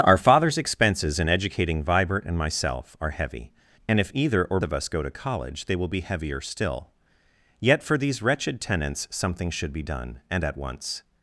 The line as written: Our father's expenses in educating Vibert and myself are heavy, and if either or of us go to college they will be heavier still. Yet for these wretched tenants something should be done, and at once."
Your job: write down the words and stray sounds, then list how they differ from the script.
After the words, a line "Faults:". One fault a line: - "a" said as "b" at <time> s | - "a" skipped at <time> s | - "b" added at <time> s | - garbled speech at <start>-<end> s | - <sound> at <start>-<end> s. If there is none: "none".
Our father's expenses in educating Vibert and myself are heavy, and if either or of us go to college they will be heavier still. Yet for these wretched tenants something should be done, and at once."
Faults:
none